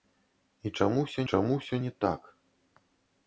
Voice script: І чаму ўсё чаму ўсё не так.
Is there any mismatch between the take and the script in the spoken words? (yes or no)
no